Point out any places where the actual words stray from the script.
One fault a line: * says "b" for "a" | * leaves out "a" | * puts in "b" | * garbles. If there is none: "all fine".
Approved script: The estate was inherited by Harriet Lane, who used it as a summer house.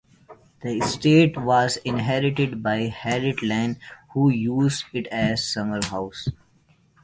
all fine